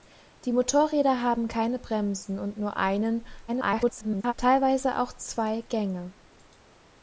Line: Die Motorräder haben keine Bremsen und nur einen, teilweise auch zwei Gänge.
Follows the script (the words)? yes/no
no